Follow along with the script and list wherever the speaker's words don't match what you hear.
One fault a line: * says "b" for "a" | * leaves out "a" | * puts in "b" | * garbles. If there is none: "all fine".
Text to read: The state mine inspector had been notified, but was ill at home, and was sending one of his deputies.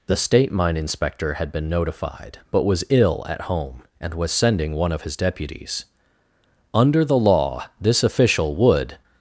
* puts in "Under the law this official would"